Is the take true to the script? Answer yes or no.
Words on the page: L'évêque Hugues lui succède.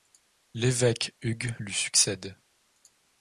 yes